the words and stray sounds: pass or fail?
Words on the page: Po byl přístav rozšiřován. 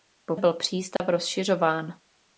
fail